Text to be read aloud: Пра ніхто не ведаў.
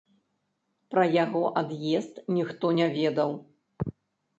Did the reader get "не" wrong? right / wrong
right